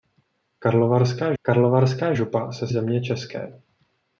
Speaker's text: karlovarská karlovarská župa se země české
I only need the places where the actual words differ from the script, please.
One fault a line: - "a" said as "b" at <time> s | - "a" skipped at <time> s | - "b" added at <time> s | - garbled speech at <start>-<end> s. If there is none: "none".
none